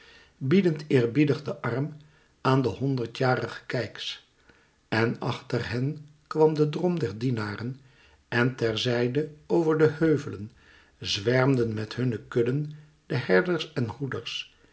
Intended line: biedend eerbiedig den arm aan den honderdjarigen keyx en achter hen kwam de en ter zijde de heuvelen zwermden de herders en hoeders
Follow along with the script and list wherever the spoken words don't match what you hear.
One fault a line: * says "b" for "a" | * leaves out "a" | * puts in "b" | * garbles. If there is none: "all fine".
* puts in "drom der dienaren"
* puts in "over"
* puts in "met hunne kudden"